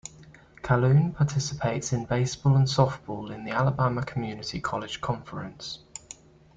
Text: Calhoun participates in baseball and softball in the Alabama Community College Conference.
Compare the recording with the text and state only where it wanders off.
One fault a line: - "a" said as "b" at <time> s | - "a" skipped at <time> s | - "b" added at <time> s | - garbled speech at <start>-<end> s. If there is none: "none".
none